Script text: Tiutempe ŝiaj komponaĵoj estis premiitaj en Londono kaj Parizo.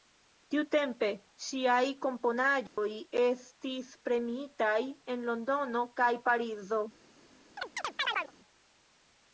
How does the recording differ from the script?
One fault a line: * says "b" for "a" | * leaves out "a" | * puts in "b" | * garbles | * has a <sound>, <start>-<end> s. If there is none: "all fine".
* has a dropout, 2.7-2.8 s
* has a chirp, 7.6-8.3 s